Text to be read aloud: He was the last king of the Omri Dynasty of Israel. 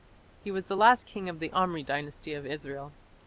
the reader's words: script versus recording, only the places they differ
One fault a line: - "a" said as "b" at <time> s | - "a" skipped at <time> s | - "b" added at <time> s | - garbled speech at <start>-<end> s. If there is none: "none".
none